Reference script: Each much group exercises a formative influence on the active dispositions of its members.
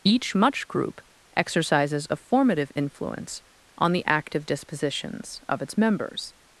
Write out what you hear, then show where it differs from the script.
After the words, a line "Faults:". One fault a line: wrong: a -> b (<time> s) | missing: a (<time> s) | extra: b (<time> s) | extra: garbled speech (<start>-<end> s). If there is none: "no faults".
Each much group exercises a formative influence on the active dispositions of its members.
Faults:
no faults